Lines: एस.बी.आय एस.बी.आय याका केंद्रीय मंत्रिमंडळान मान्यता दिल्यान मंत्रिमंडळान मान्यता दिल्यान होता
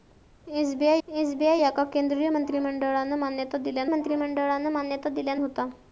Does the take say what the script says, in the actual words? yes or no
yes